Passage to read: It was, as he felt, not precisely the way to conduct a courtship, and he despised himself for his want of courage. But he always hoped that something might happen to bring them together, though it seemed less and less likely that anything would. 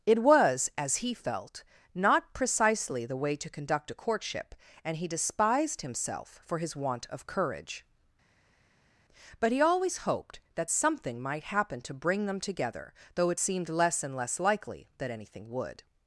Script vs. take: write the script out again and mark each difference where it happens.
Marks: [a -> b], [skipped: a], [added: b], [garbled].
It was, as he felt, not precisely the way to conduct a courtship, and he despised himself for his want of courage. But he always hoped that something might happen to bring them together, though it seemed less and less likely that anything would.